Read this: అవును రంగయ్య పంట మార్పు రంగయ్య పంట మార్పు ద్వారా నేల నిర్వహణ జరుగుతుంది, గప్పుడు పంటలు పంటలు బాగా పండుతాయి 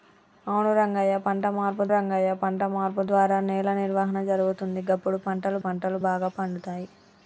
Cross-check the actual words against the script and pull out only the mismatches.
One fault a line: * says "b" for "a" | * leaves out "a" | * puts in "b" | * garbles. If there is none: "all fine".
all fine